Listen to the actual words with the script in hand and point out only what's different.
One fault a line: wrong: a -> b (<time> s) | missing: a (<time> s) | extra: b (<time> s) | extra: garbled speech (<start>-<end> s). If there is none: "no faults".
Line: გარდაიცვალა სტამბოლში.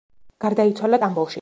no faults